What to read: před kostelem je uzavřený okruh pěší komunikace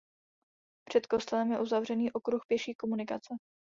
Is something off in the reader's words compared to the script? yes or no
no